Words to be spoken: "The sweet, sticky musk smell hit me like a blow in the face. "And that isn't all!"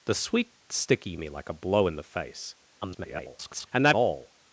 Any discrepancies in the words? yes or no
yes